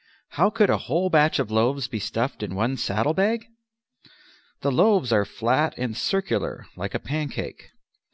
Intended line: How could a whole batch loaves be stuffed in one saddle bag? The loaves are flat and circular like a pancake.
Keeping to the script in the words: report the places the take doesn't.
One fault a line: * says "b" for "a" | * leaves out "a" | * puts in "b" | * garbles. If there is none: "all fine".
* puts in "of"